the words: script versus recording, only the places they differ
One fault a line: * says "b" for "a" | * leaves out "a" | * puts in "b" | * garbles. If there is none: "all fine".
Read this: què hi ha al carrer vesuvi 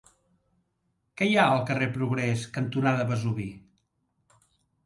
* puts in "progrés cantonada"